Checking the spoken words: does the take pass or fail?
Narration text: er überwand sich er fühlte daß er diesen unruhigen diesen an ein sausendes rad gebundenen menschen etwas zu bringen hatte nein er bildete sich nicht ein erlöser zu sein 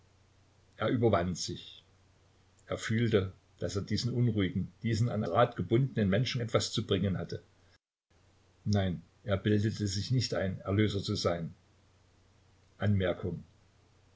fail